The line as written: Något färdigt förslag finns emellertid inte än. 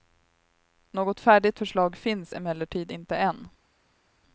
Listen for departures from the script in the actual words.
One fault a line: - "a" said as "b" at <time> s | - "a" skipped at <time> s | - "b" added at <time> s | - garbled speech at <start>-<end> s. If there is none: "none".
none